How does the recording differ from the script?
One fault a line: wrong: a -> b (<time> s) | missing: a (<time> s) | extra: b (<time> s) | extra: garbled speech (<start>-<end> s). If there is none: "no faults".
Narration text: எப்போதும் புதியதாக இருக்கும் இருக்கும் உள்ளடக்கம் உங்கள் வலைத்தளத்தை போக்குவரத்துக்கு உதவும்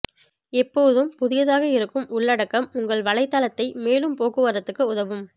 missing: இருக்கும் (2.1 s)
extra: மேலும் (3.8 s)